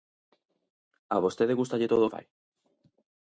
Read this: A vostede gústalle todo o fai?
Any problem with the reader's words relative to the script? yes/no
no